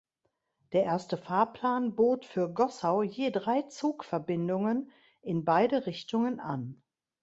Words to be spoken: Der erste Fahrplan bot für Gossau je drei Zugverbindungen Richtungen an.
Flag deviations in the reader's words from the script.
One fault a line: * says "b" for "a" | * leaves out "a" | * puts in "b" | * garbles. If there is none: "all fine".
* puts in "in beide"